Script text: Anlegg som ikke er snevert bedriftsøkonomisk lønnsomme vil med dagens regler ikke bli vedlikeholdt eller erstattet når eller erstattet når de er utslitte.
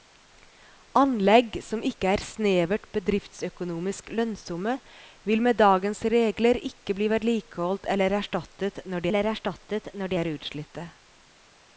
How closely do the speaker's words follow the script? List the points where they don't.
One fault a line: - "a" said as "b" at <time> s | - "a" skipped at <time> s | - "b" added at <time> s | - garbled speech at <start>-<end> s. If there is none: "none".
none